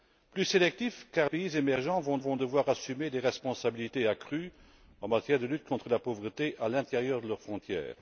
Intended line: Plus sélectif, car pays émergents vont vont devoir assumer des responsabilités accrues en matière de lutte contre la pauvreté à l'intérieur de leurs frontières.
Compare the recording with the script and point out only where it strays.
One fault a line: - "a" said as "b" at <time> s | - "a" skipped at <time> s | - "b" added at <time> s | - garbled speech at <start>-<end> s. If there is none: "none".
none